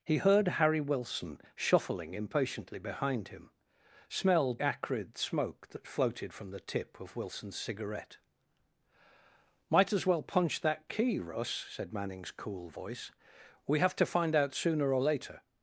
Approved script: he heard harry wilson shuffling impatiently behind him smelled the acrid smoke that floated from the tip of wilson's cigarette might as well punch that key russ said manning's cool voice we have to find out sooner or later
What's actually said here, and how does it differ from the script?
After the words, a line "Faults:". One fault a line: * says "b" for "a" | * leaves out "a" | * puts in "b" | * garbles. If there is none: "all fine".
he heard harry wilson shuffling impatiently behind him smelled acrid smoke that floated from the tip of wilson's cigarette might as well punch that key russ said manning's cool voice we have to find out sooner or later
Faults:
* leaves out "the"